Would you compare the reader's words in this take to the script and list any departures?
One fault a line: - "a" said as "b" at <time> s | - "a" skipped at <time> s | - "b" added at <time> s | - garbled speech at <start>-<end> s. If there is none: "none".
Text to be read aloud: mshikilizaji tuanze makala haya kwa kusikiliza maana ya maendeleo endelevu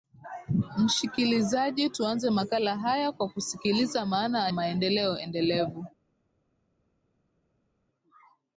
- "ya" skipped at 4.5 s